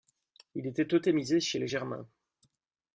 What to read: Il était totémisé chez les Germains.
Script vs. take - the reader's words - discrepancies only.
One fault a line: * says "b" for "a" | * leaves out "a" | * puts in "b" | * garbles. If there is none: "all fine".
all fine